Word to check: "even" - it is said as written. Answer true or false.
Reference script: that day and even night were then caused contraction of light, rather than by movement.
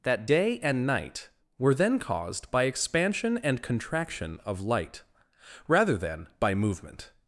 false